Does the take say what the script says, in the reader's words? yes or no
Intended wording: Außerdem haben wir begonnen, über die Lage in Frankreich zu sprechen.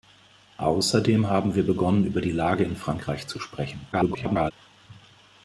no